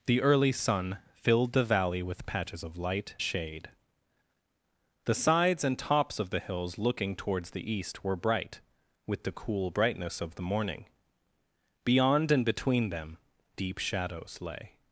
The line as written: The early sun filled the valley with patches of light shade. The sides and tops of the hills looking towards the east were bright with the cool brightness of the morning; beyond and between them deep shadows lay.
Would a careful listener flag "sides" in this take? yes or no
no